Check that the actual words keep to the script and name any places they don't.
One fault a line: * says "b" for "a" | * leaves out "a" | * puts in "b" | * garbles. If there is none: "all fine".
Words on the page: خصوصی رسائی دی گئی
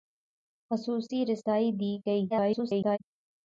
* garbles